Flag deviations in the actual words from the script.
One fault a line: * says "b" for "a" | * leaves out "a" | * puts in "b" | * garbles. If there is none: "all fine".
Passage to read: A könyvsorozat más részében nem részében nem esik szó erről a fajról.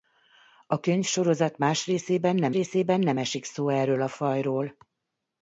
all fine